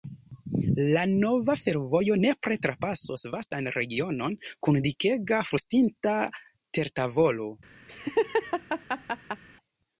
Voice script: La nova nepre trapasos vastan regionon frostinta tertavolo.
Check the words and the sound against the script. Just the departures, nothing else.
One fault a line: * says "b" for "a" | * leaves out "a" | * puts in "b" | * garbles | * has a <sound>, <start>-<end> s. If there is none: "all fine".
* puts in "fervojo"
* puts in "kun dikega"
* has a laugh, 7.9-9.4 s